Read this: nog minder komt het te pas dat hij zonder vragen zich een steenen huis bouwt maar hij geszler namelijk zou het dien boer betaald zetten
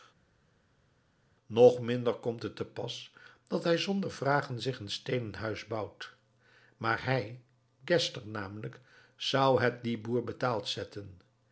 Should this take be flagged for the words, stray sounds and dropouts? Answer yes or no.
no